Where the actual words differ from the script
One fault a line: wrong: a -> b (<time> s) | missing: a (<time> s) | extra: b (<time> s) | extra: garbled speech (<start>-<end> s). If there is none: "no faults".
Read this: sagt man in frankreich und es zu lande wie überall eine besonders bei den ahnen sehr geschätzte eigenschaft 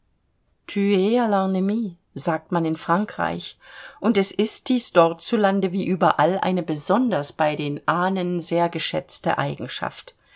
extra: ist dies dort (4.3 s)